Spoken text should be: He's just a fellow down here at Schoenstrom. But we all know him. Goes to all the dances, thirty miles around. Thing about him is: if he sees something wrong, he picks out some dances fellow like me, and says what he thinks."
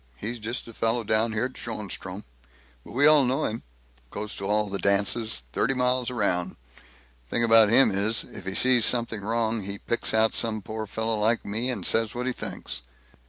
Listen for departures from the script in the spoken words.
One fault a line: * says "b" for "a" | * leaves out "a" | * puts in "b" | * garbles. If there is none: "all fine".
* says "poor" for "dances"